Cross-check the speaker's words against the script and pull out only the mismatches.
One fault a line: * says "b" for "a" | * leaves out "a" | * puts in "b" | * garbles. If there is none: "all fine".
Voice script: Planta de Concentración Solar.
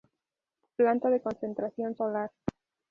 all fine